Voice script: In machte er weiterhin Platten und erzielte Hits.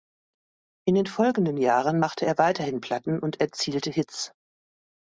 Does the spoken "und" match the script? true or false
true